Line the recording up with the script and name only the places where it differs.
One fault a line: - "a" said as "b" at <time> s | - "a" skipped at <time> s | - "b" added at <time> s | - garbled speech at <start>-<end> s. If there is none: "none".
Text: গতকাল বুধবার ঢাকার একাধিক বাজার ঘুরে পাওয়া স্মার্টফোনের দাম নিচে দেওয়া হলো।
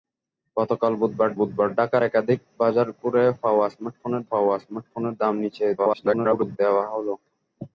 - "বুধবার" added at 1.4 s
- "পাওয়া স্মার্টফোনের" added at 4.3 s
- garbled speech at 5.8-6.6 s